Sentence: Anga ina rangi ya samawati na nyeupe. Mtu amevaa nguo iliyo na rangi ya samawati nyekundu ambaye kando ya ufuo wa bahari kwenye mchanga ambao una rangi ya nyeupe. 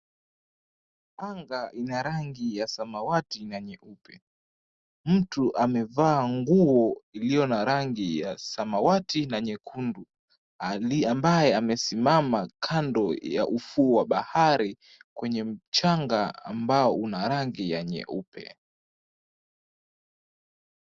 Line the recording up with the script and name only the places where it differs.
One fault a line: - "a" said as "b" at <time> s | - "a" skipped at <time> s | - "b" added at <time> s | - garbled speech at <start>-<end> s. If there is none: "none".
- "na" added at 9.3 s
- "amesimama" added at 11.6 s